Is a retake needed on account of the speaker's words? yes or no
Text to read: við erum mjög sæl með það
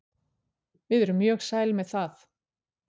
no